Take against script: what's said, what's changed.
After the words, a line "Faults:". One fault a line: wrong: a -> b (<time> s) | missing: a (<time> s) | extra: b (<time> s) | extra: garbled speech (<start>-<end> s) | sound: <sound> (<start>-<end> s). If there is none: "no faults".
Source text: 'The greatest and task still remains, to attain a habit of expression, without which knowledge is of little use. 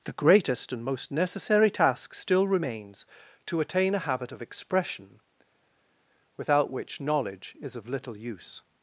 'The greatest and most necessary task still remains, to attain a habit of expression, without which knowledge is of little use.
Faults:
extra: most necessary (0.8 s)